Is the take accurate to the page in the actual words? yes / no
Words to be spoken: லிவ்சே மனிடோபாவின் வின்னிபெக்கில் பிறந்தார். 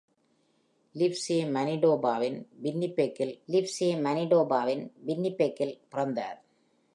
no